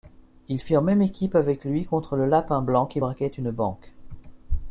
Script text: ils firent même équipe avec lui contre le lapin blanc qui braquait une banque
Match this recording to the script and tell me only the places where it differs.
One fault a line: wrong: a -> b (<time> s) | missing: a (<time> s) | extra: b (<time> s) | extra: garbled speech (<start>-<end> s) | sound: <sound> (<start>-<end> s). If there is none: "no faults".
no faults